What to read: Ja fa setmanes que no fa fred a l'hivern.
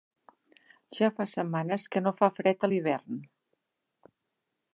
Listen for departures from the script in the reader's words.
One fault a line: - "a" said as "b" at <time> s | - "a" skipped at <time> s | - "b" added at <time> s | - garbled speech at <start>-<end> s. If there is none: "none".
none